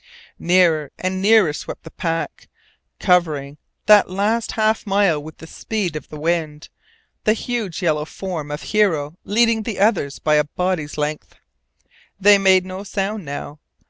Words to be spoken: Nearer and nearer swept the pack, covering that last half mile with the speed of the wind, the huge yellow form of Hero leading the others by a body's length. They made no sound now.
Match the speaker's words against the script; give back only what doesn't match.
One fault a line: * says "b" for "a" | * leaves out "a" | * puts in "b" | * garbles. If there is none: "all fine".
all fine